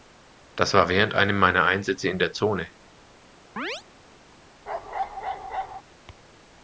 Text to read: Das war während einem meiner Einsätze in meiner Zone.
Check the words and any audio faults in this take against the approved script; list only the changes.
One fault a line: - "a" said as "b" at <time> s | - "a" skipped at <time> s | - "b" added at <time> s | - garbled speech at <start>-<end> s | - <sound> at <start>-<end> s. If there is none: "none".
- "meiner" said as "der" at 2.2 s
- chirp at 3.6-3.8 s
- bark at 4.7-5.8 s